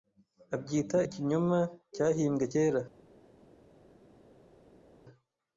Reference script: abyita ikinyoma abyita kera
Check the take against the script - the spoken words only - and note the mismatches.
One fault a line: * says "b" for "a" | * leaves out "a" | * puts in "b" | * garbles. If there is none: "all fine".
* says "cyahimbwe" for "abyita"